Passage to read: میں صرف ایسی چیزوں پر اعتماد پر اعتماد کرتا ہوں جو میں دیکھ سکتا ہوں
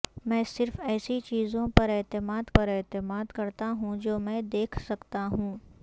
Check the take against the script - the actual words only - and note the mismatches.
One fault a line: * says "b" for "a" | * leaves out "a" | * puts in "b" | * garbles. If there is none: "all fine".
all fine